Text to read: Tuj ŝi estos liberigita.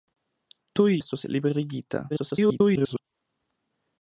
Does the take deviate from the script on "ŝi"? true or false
true